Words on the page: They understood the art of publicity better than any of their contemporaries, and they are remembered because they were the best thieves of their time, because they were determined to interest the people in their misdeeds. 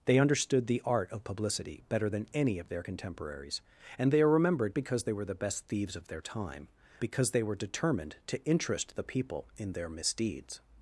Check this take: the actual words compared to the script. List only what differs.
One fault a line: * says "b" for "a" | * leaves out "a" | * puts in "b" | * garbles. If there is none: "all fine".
all fine